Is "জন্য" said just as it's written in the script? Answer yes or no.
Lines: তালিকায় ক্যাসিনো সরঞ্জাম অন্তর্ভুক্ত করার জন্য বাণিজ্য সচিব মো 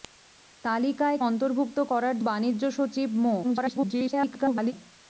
no